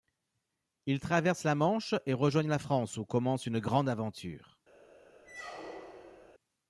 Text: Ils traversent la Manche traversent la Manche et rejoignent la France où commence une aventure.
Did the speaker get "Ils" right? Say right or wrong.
right